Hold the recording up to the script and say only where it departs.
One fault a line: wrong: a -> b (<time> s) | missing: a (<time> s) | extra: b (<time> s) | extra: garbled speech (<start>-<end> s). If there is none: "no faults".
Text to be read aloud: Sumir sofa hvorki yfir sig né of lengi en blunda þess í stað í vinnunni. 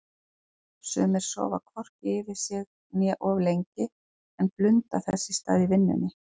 no faults